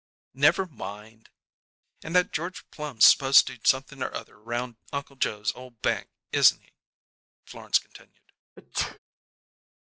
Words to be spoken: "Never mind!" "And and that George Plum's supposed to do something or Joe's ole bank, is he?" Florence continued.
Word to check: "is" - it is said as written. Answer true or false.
false